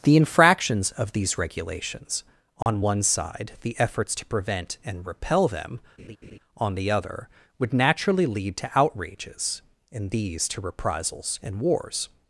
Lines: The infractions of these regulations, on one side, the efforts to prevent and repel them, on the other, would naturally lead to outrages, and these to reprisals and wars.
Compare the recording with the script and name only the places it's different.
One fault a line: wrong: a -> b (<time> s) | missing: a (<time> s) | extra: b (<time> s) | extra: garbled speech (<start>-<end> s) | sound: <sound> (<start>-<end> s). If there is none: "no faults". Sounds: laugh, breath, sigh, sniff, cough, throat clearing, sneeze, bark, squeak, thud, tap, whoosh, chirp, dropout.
sound: dropout (2.6-2.7 s)
sound: laugh (6.0-6.4 s)